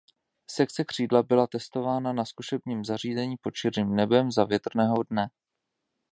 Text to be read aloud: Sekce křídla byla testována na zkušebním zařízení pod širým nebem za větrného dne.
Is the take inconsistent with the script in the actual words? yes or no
no